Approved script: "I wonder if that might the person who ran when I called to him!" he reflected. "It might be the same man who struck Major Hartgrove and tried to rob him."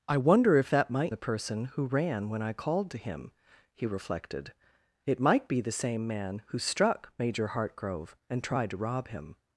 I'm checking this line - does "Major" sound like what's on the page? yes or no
yes